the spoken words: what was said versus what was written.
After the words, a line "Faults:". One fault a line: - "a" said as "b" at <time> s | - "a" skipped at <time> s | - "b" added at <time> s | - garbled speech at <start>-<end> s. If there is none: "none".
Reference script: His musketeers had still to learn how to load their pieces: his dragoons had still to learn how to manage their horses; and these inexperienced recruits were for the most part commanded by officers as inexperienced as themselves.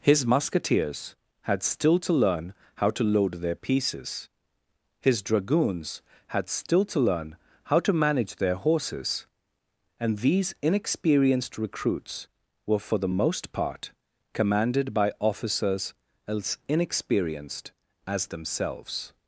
His musketeers had still to learn how to load their pieces: his dragoons had still to learn how to manage their horses; and these inexperienced recruits were for the most part commanded by officers as inexperienced as themselves.
Faults:
none